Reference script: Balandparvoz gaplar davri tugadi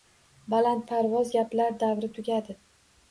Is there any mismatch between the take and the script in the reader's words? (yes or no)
no